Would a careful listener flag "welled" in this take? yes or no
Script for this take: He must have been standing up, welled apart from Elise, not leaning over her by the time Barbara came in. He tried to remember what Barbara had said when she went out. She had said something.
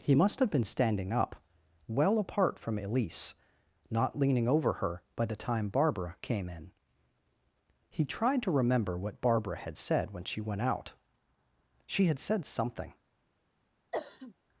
yes